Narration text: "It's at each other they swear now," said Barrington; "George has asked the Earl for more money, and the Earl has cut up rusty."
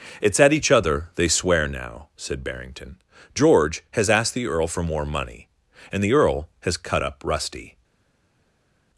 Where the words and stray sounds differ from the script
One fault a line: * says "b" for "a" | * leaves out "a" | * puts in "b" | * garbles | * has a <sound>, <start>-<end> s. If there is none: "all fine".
all fine